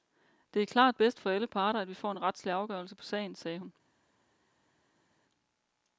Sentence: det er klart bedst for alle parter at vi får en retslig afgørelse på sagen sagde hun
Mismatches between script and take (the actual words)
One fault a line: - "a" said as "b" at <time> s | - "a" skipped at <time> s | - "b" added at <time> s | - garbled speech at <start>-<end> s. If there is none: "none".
none